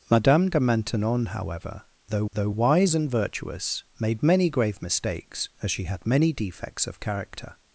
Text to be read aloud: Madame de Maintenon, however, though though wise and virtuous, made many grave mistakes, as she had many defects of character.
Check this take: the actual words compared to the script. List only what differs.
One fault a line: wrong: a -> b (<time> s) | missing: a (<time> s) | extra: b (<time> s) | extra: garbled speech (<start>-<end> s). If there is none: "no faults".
no faults